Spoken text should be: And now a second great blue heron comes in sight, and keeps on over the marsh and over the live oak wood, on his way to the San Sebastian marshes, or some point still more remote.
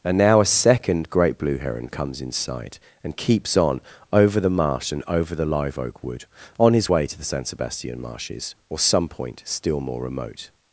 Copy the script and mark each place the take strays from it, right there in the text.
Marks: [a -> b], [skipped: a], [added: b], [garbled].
And now a second great blue heron comes in sight, and keeps on over the marsh and over the live oak wood, on his way to the San Sebastian marshes, or some point still more remote.